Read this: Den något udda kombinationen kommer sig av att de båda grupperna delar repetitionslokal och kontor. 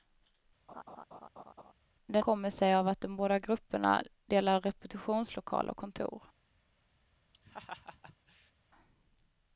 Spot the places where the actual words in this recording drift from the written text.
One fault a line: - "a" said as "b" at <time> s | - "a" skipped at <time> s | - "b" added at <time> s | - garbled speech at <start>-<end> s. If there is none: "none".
- "något udda kombinationen" skipped at 2.2 s